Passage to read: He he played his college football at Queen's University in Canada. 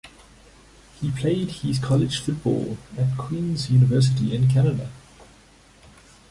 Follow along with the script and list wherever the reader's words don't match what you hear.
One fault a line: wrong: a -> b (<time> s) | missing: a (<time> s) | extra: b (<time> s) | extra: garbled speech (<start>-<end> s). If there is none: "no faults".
missing: he (1.1 s)